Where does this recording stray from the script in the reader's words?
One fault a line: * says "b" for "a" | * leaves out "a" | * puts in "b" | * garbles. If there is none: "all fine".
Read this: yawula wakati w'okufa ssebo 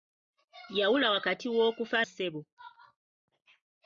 all fine